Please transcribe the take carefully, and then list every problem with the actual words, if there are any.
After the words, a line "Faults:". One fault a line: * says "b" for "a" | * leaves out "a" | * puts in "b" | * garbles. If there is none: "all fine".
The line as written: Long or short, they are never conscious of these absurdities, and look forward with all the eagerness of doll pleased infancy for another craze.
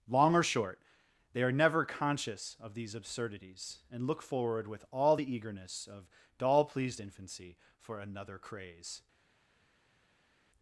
Long or short, they are never conscious of these absurdities, and look forward with all the eagerness of doll pleased infancy for another craze.
Faults:
all fine